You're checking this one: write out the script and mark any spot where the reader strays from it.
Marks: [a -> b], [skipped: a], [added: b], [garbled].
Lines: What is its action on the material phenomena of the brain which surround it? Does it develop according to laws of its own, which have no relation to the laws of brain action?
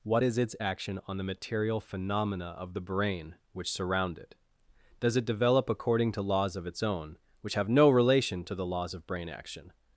What is its action on the material phenomena of the brain which surround it? Does it develop according to laws of its own, which have no relation to the laws of brain action?